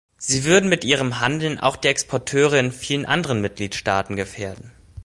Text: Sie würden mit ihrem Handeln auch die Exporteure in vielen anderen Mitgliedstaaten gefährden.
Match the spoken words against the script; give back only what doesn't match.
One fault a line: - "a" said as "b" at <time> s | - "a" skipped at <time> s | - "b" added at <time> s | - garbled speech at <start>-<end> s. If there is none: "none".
none